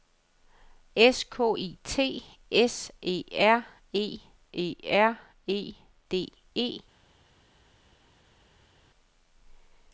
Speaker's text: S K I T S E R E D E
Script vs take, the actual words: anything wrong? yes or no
yes